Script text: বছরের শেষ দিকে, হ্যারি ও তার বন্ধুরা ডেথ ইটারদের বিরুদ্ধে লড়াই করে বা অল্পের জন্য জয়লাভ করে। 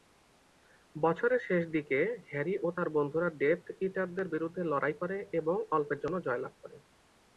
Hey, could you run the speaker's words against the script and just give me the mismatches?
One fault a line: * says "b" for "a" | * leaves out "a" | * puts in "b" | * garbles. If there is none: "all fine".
* says "এবং" for "বা"